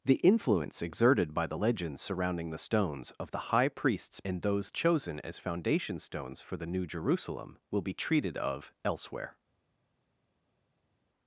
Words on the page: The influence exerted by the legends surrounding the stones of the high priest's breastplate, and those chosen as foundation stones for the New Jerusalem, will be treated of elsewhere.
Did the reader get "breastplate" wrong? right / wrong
wrong